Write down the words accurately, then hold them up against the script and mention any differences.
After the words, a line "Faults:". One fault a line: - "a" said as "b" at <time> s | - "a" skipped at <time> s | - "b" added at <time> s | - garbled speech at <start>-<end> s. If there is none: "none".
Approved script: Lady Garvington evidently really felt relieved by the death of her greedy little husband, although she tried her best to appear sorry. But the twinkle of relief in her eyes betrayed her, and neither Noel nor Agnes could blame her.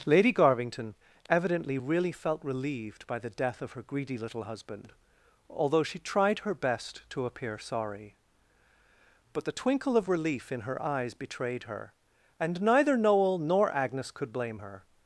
Lady Garvington evidently really felt relieved by the death of her greedy little husband, although she tried her best to appear sorry. But the twinkle of relief in her eyes betrayed her, and neither Noel nor Agnes could blame her.
Faults:
none